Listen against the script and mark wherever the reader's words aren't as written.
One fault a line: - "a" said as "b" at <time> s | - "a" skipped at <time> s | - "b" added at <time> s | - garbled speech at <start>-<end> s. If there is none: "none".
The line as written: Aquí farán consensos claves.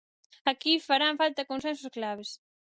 - "falta" added at 1.2 s